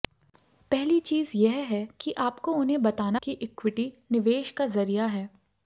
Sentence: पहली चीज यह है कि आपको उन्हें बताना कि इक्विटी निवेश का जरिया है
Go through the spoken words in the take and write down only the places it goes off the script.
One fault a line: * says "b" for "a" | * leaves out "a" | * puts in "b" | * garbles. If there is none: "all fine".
all fine